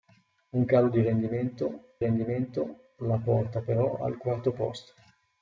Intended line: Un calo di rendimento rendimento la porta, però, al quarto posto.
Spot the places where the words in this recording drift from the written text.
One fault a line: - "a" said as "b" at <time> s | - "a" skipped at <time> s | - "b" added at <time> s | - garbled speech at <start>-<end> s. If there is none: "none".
none